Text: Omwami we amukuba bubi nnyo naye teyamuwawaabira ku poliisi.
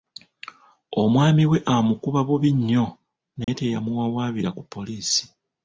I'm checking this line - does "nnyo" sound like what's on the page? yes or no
yes